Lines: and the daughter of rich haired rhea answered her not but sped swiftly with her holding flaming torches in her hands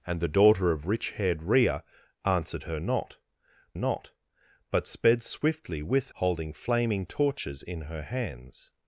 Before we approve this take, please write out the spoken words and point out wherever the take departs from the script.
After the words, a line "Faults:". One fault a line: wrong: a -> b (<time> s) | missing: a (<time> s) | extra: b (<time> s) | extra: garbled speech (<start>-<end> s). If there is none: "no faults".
and the daughter of rich haired rhea answered her not not but sped swiftly with holding flaming torches in her hands
Faults:
extra: not (3.7 s)
missing: her (6.1 s)